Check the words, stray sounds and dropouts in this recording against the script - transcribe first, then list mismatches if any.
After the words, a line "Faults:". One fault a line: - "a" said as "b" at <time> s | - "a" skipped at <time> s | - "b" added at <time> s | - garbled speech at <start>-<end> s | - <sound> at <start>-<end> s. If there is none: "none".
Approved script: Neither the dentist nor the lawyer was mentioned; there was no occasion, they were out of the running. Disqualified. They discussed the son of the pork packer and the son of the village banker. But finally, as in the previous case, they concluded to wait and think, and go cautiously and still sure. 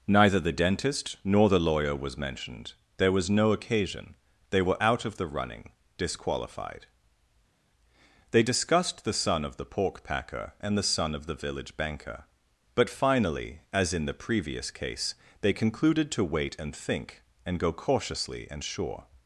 Neither the dentist nor the lawyer was mentioned; there was no occasion, they were out of the running. Disqualified. They discussed the son of the pork packer and the son of the village banker. But finally, as in the previous case, they concluded to wait and think, and go cautiously and sure.
Faults:
- "still" skipped at 18.6 s